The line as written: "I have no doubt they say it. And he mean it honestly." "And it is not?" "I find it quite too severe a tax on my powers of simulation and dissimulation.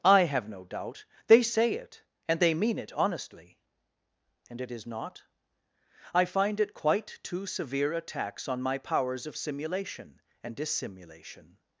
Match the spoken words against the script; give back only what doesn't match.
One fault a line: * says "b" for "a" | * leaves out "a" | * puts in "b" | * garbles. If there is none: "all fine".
* says "they" for "he"